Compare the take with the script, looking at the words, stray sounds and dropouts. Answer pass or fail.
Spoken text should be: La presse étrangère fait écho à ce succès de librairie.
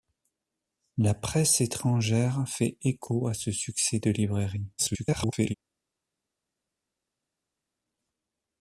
fail